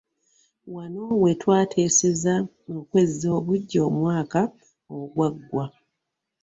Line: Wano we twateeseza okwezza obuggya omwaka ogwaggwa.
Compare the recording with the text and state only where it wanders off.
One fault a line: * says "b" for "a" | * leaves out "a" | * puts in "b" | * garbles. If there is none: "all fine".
all fine